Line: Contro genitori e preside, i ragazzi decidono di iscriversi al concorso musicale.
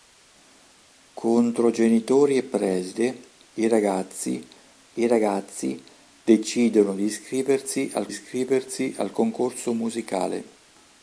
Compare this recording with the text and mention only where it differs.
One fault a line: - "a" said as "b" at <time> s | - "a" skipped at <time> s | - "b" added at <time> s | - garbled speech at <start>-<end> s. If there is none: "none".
- "i ragazzi" added at 4.9 s
- "iscriversi al" added at 8.1 s